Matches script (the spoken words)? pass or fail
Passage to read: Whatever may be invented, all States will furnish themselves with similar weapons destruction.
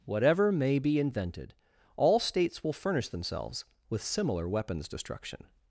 pass